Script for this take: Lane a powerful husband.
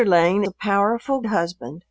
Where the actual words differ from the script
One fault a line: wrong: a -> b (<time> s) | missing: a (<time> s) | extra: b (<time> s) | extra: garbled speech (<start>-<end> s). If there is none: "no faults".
no faults